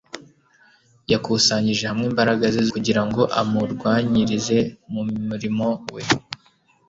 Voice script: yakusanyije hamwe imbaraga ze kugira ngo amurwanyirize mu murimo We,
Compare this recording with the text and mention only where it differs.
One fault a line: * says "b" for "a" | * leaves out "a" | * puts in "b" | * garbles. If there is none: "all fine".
all fine